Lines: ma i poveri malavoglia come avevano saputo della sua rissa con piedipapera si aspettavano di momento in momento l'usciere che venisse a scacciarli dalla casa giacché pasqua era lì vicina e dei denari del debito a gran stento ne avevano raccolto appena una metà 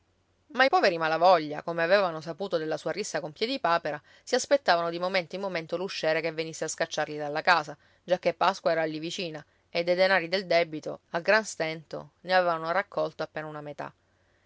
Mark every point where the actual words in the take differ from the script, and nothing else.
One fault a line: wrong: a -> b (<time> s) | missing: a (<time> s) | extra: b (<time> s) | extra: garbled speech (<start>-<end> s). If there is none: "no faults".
no faults